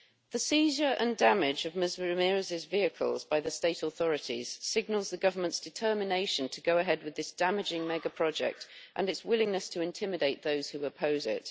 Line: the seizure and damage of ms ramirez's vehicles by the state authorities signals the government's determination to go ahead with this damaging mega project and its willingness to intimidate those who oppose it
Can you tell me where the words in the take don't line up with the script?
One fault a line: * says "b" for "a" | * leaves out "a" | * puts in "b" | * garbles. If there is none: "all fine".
all fine